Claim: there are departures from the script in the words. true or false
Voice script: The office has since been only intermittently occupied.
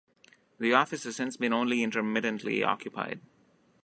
false